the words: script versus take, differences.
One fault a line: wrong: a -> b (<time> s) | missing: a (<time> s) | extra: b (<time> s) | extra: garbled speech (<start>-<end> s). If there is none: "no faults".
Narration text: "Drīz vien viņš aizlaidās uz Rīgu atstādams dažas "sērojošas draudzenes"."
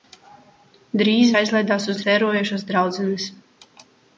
missing: vien viņš (1.3 s)
missing: Rīgu atstādams dažas (2.0 s)